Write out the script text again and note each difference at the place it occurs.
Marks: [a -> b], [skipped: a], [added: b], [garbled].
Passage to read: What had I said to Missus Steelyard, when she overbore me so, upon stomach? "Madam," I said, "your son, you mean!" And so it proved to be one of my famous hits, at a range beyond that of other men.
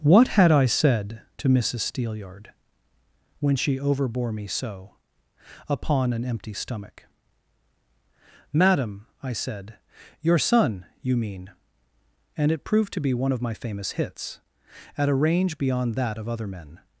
What had I said to Missus Steelyard, when she overbore me so, upon [added: an empty] stomach? "Madam," I said, "your son, you mean!" And [skipped: so] it proved to be one of my famous hits, at a range beyond that of other men.